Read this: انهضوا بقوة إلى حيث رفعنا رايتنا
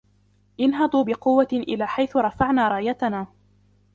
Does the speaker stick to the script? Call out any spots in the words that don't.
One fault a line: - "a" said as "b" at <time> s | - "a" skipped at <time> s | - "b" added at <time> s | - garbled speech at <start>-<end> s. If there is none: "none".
none